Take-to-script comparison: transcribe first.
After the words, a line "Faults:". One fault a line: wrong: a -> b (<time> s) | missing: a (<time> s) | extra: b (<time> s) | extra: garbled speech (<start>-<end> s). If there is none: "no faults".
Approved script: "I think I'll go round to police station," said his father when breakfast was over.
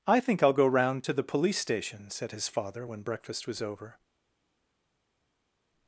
"I think I'll go round to the police station," said his father when breakfast was over.
Faults:
extra: the (1.1 s)